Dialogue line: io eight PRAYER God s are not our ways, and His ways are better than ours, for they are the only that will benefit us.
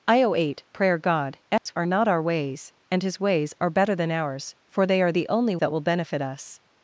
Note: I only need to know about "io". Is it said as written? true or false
true